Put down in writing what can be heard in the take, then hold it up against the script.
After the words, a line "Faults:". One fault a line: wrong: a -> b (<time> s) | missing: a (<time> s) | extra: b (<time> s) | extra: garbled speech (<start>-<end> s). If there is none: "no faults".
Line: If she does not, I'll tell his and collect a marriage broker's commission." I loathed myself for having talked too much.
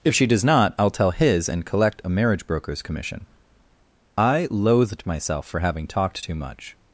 If she does not, I'll tell his and collect a marriage broker's commission." I loathed myself for having talked too much.
Faults:
no faults